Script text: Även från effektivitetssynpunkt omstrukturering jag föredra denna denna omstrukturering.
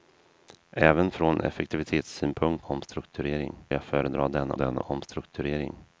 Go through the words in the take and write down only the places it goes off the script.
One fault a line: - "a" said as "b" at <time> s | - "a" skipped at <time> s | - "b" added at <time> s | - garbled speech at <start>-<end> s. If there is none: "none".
none